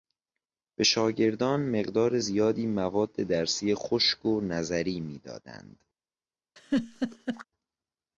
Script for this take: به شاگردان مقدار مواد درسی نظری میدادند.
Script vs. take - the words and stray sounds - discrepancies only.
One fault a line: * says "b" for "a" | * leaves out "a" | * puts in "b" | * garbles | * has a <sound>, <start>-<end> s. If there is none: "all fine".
* puts in "زیادی"
* puts in "خشک و"
* has a laugh, 6.6-7.4 s